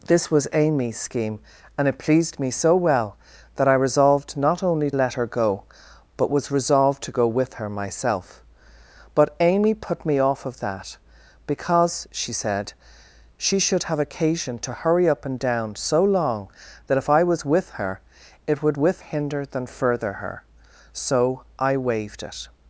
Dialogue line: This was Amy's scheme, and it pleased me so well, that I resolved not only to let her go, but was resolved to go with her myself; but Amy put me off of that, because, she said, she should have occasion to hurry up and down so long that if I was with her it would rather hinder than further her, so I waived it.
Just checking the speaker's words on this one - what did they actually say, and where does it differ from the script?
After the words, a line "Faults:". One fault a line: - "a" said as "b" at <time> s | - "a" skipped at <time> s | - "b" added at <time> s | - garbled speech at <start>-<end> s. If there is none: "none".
This was Amy's scheme, and it pleased me so well, that I resolved not only let her go, but was resolved to go with her myself; but Amy put me off of that, because, she said, she should have occasion to hurry up and down so long that if I was with her it would with hinder than further her, so I waived it.
Faults:
- "to" skipped at 4.9 s
- "rather" said as "with" at 18.7 s